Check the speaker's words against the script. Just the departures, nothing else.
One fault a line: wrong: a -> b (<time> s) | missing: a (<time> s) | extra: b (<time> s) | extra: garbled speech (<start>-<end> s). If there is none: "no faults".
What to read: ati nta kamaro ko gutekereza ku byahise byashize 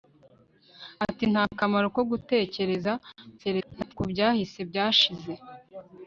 extra: garbled speech (3.4-3.9 s)